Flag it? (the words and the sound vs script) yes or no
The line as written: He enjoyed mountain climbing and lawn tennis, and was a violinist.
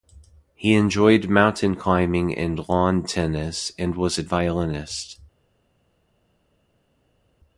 no